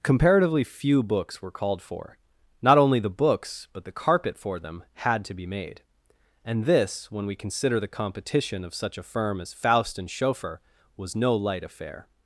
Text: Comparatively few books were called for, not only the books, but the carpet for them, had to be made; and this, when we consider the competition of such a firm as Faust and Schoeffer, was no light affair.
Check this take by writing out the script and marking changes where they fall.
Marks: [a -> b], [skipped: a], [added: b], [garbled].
Comparatively few books were called for, not only the books, but the carpet for them, had to be made; and this, when we consider the competition of such a firm as Faust and Schoeffer, was no light affair.